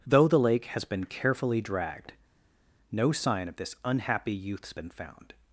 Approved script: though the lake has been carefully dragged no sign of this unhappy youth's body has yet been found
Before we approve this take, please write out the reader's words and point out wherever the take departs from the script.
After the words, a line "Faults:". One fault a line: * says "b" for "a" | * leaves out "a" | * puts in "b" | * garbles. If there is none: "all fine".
though the lake has been carefully dragged no sign of this unhappy youth's been found
Faults:
* leaves out "body has yet"